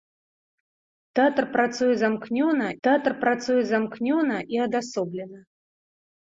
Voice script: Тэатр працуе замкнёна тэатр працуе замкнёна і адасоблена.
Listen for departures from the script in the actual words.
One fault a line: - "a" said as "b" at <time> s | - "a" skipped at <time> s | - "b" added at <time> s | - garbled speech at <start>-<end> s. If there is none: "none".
none